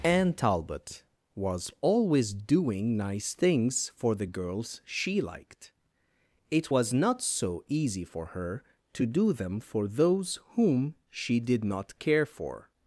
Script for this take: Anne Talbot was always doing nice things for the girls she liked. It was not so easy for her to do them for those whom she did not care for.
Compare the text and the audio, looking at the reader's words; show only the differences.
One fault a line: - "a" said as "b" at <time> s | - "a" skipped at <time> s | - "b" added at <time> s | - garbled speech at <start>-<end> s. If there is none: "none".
none